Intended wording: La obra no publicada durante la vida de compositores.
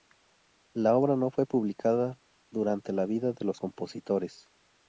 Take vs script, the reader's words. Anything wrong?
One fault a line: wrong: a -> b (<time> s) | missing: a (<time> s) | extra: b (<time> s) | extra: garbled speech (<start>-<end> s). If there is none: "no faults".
extra: fue (1.3 s)
extra: los (3.4 s)